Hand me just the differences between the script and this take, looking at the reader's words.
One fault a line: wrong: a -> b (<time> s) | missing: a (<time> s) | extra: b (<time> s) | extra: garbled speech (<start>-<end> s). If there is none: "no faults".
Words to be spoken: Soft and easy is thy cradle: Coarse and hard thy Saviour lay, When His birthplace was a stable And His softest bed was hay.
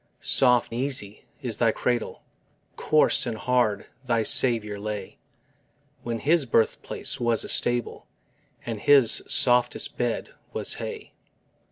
missing: and (0.8 s)